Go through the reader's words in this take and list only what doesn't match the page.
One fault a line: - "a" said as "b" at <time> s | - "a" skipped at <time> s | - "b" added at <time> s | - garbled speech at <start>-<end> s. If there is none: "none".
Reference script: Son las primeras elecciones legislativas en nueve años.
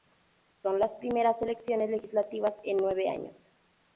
none